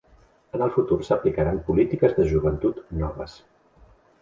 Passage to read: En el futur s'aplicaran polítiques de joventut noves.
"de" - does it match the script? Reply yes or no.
yes